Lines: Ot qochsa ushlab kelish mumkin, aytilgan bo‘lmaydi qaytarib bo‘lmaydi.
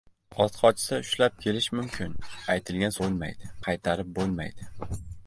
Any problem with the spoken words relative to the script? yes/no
no